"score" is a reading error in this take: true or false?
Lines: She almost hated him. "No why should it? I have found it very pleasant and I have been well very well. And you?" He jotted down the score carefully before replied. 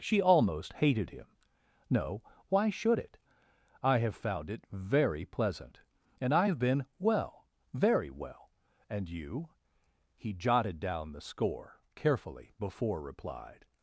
false